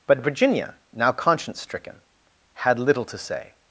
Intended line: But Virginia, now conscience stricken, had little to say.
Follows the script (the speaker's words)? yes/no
yes